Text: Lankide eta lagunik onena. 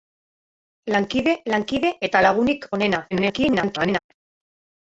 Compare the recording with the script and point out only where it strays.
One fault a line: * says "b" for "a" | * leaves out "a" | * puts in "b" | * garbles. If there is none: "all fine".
* puts in "lankide"
* garbles